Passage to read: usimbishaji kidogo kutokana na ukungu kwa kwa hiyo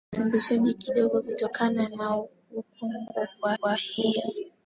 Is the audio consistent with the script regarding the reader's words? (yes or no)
yes